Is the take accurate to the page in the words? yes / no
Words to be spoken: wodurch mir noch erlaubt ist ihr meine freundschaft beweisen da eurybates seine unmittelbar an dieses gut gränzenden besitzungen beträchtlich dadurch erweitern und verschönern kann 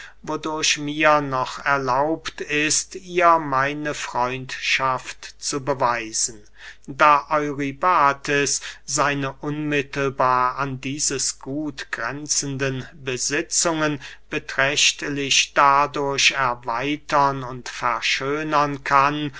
no